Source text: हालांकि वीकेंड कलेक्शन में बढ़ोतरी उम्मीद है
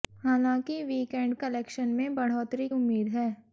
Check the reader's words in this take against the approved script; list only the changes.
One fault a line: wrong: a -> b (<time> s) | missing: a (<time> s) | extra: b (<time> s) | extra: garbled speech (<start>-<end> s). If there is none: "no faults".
no faults